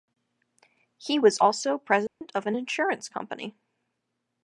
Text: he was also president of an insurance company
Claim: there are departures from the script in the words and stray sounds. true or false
true